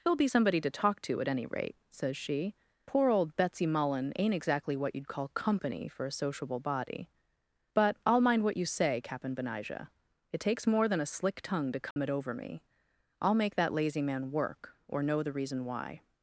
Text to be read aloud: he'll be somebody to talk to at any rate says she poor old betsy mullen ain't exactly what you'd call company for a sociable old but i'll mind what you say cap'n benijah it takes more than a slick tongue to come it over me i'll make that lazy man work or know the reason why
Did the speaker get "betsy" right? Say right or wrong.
right